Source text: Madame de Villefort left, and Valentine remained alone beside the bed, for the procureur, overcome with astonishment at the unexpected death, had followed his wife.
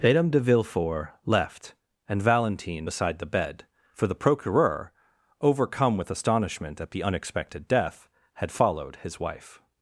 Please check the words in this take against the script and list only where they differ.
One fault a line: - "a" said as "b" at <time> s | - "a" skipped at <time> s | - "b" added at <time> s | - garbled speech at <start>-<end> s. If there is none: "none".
- "remained alone" skipped at 2.9 s